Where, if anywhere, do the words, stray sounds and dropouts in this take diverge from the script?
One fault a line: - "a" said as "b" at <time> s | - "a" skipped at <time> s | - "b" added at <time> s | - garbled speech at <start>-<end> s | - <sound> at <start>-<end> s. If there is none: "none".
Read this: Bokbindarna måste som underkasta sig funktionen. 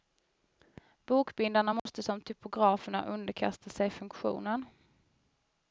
- dropout at 1.8-1.9 s
- "typograferna" added at 2.2 s